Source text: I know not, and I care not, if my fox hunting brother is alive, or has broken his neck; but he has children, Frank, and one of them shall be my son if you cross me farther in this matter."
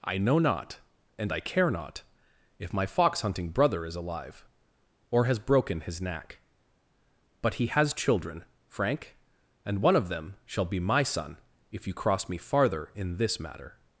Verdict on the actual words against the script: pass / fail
fail